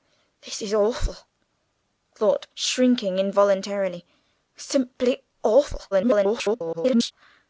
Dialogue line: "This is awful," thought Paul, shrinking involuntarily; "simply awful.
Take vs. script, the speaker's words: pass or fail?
fail